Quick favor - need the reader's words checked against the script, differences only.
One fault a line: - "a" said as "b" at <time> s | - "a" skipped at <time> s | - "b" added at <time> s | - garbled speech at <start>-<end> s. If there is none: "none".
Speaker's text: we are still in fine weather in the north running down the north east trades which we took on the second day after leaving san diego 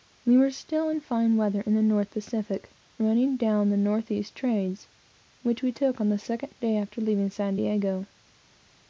- "are" said as "were" at 0.3 s
- "pacific" added at 2.1 s